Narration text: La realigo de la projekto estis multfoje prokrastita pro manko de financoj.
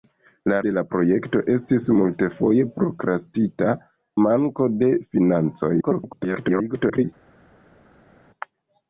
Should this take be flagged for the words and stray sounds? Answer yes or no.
yes